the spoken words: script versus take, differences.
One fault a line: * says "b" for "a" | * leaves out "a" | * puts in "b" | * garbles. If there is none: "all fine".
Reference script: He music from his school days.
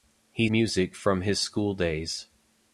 all fine